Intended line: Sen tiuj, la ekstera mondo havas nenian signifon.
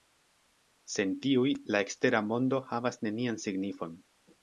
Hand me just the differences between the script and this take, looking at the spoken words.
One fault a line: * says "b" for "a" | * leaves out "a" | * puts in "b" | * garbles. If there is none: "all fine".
all fine